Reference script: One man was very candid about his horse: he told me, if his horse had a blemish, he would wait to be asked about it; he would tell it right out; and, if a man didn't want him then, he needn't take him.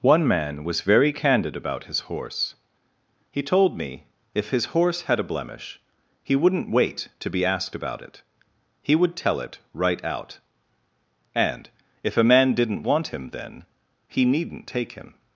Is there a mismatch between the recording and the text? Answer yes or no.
yes